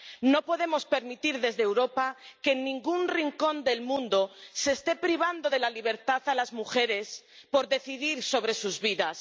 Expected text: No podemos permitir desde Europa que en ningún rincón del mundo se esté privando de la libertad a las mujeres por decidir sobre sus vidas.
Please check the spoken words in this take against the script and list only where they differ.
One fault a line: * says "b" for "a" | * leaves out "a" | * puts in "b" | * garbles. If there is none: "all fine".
all fine